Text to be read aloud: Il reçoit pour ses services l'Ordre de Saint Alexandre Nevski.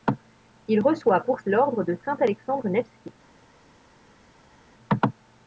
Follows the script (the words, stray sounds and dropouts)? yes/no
no